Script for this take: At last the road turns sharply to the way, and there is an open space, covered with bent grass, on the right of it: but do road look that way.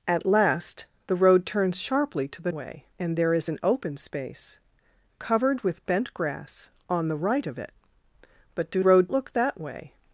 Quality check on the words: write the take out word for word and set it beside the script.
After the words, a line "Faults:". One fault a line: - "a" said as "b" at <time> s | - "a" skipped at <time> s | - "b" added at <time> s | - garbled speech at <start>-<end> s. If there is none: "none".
At last the road turns sharply to the way, and there is an open space, covered with bent grass, on the right of it: but do road look that way.
Faults:
none